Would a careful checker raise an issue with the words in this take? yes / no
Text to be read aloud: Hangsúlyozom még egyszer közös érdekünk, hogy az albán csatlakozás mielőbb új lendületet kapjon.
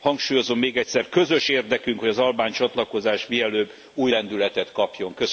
no